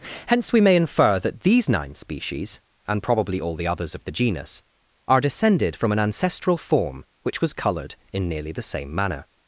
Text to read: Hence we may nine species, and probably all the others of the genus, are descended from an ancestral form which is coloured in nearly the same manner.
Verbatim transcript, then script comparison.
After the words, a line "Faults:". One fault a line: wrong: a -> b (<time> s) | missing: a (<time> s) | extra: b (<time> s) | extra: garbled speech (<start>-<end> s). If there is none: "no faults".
Hence we may infer that these nine species, and probably all the others of the genus, are descended from an ancestral form which was coloured in nearly the same manner.
Faults:
extra: infer that these (0.8 s)
wrong: is -> was (7.4 s)